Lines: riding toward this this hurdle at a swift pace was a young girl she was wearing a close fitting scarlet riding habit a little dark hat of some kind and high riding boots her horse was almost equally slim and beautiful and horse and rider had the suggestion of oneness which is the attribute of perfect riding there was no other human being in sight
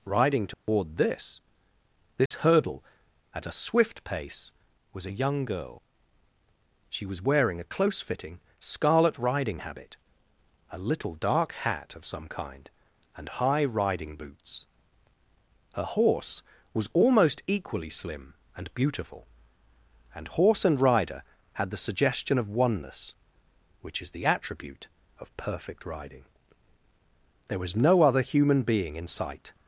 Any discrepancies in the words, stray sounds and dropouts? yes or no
yes